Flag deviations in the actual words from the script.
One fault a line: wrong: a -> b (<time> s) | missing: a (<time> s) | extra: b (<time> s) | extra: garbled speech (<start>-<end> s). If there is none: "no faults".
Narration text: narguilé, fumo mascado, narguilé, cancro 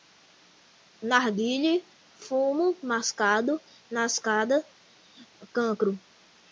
wrong: narguilé -> mascada (3.9 s)